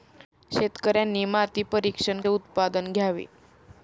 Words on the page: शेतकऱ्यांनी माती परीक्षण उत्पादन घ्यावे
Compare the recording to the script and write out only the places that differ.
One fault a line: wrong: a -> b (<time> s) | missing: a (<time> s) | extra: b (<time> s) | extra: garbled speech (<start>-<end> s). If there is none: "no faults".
no faults